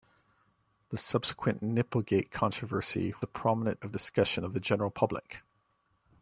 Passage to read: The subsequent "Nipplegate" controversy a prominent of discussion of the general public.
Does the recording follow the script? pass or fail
pass